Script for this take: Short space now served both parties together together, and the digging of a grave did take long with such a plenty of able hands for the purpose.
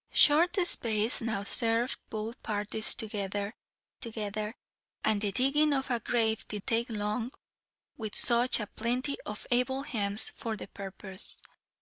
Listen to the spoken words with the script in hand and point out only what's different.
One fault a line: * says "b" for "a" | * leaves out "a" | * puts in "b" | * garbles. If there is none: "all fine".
all fine